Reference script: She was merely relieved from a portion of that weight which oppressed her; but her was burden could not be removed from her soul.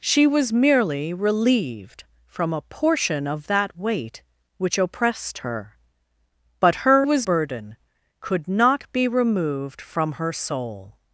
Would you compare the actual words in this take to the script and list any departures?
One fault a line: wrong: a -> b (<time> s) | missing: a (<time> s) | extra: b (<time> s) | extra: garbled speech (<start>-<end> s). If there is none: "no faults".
no faults